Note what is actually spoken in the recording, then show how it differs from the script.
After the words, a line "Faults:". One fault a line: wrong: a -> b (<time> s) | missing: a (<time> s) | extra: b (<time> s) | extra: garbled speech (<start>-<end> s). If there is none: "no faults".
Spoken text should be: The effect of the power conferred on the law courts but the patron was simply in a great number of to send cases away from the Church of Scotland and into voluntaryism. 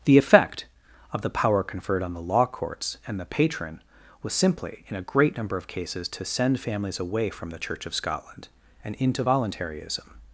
The effect of the power conferred on the law courts and the patron was simply in a great number of cases to send families away from the Church of Scotland and into voluntaryism.
Faults:
wrong: but -> and (3.0 s)
extra: cases (5.7 s)
wrong: cases -> families (6.6 s)